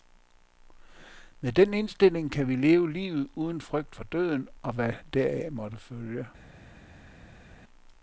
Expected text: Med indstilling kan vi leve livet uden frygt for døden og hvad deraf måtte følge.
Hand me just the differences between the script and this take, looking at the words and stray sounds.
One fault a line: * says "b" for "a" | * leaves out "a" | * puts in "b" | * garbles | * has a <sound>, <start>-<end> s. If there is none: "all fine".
* puts in "den"